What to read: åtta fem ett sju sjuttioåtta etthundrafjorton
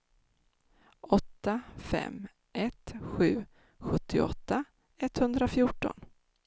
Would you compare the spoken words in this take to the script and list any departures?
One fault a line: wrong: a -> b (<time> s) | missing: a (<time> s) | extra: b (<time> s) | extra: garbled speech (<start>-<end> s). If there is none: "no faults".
no faults